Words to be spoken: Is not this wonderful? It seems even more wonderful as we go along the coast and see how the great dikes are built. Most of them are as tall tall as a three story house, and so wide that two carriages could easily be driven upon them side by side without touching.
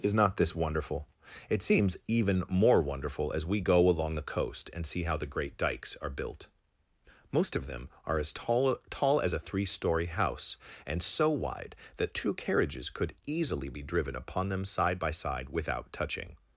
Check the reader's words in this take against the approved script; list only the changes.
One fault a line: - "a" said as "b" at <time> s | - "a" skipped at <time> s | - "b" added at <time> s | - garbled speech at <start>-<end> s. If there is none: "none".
none